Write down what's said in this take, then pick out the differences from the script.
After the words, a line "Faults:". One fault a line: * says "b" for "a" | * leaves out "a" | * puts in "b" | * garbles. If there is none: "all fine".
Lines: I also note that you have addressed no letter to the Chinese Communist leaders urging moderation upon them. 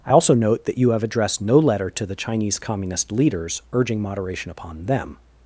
I also note that you have addressed no letter to the Chinese Communist leaders urging moderation upon them.
Faults:
all fine